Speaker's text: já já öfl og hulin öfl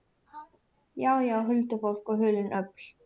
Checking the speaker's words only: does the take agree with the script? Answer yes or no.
no